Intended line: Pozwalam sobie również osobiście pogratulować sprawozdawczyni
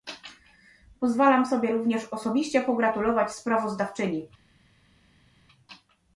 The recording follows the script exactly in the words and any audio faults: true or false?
true